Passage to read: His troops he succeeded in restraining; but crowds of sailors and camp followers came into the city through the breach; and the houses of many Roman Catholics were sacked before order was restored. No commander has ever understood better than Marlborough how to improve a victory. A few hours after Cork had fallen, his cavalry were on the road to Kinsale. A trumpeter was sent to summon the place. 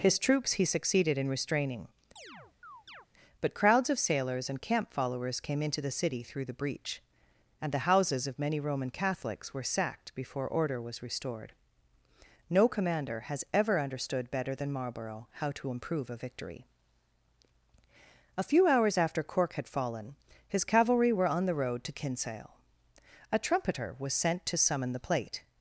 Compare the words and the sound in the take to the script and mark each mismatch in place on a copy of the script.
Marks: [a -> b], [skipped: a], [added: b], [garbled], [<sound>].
His troops he succeeded in restraining; [chirp] but crowds of sailors and camp followers came into the city through the breach; and the houses of many Roman Catholics were sacked before order was restored. No commander has ever understood better than Marlborough how to improve a victory. A few hours after Cork had fallen, his cavalry were on the road to Kinsale. A trumpeter was sent to summon the [place. -> plate]